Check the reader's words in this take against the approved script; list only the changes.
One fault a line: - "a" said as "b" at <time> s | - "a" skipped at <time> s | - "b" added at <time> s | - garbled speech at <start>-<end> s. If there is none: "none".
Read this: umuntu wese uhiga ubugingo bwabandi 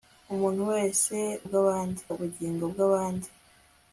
- "uhiga" said as "bwabandi" at 1.5 s